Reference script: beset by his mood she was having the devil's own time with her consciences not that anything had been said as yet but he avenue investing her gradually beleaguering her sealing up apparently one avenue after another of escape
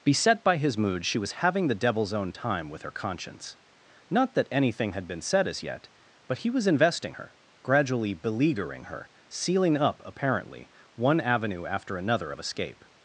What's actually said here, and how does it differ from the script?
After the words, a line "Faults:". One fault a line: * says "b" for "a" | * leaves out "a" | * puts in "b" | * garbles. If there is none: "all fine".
beset by his mood she was having the devil's own time with her conscience not that anything had been said as yet but he was investing her gradually beleaguering her sealing up apparently one avenue after another of escape
Faults:
* says "conscience" for "consciences"
* says "was" for "avenue"